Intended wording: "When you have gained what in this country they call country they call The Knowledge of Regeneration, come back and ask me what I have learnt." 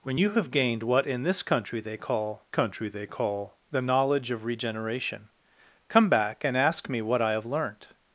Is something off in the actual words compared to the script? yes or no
no